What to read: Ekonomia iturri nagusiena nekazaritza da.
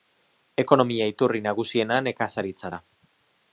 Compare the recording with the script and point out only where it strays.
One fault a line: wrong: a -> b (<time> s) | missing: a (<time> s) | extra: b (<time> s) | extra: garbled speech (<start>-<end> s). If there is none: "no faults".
no faults